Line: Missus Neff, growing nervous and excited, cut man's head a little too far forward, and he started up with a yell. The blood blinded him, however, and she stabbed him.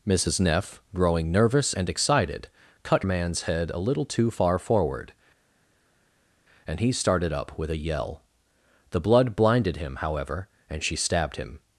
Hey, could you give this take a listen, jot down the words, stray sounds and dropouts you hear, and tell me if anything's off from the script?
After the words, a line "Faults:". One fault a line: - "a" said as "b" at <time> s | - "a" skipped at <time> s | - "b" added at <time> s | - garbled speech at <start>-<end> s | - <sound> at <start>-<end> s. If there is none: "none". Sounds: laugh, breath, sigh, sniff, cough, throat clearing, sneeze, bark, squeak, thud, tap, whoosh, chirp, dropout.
Missus Neff, growing nervous and excited, cut man's head a little too far forward, and he started up with a yell. The blood blinded him, however, and she stabbed him.
Faults:
none